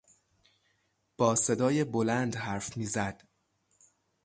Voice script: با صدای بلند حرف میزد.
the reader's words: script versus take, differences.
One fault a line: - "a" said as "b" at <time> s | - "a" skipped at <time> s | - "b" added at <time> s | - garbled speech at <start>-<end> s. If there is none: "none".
none